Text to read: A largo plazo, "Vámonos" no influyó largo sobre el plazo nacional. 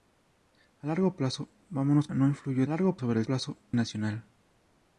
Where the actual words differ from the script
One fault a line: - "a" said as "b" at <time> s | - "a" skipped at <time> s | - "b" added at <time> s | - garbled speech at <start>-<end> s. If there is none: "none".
none